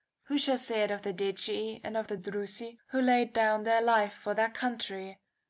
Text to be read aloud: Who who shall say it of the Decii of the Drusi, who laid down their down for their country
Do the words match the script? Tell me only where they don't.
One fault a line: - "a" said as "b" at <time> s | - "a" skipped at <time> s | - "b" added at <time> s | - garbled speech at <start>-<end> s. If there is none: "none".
- "who" skipped at 0.4 s
- "and" added at 1.8 s
- "down" said as "life" at 3.8 s